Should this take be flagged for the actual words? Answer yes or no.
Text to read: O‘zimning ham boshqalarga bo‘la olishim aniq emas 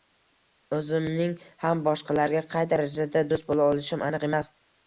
yes